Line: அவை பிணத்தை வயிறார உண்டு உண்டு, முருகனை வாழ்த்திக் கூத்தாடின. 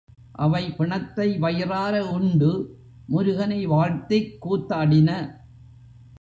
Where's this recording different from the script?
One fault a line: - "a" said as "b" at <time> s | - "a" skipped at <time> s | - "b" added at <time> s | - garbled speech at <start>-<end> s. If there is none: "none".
- "உண்டு" skipped at 2.8 s